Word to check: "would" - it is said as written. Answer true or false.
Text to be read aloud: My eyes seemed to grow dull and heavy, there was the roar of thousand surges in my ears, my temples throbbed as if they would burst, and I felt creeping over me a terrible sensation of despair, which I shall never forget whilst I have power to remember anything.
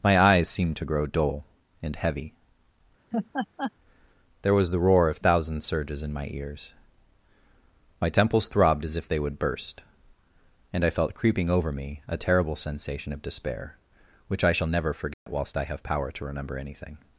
true